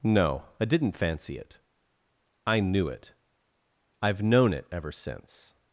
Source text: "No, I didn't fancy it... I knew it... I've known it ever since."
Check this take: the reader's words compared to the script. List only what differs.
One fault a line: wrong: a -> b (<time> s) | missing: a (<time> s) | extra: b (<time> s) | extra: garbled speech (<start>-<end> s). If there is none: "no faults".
no faults